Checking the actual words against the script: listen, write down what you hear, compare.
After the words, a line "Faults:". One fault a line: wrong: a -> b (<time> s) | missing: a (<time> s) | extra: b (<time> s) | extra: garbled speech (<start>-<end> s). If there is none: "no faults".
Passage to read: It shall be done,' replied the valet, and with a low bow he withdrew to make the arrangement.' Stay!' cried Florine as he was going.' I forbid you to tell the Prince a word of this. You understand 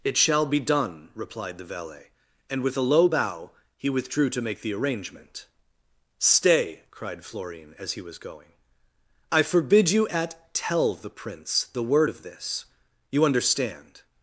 It shall be done,' replied the valet, and with a low bow he withdrew to make the arrangement.' Stay!' cried Florine as he was going.' I forbid you at tell the Prince the word of this. You understand
Faults:
wrong: to -> at (10.1 s)
wrong: a -> the (11.7 s)